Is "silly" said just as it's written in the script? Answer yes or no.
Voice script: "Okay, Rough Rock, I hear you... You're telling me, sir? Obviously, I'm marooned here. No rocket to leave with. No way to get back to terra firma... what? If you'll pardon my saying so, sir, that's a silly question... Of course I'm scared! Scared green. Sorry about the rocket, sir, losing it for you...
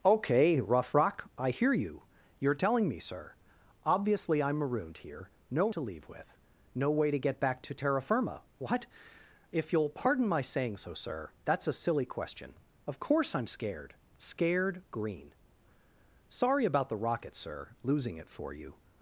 yes